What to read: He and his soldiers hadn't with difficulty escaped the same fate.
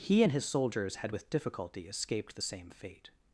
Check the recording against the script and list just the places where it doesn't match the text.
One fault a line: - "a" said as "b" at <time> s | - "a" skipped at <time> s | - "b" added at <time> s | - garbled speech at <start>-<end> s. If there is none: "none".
- "hadn't" said as "had" at 0.9 s